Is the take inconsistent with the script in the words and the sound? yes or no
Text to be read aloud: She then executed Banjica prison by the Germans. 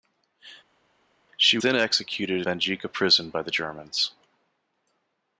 no